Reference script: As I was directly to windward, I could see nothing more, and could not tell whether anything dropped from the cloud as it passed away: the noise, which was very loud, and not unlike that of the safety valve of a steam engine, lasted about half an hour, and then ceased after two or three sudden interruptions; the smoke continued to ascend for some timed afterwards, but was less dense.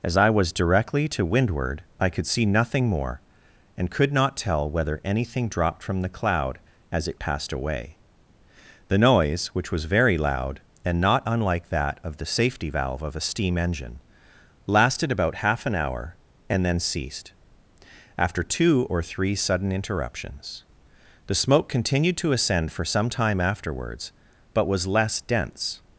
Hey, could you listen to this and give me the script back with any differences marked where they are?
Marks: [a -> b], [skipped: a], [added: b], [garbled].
As I was directly to windward, I could see nothing more, and could not tell whether anything dropped from the cloud as it passed away: the noise, which was very loud, and not unlike that of the safety valve of a steam engine, lasted about half an hour, and then ceased after two or three sudden interruptions; the smoke continued to ascend for some [timed -> time] afterwards, but was less dense.